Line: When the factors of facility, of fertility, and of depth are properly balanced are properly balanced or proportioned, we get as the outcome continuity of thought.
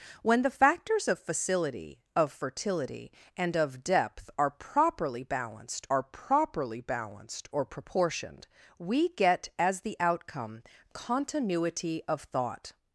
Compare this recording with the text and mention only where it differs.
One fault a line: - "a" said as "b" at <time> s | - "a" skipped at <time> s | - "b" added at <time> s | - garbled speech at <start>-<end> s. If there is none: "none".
none